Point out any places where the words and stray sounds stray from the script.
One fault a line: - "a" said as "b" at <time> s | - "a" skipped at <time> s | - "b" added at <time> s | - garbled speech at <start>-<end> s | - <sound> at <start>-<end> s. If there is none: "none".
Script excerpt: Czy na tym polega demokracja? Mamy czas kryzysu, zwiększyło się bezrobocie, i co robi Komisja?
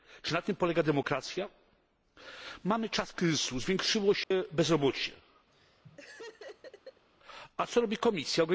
- dropout at 4.2-4.3 s
- laugh at 5.5-7.1 s
- "i" said as "a" at 7.6 s